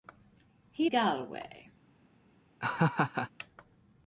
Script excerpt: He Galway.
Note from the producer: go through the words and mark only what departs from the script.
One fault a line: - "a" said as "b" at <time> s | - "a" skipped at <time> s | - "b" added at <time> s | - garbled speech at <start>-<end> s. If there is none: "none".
none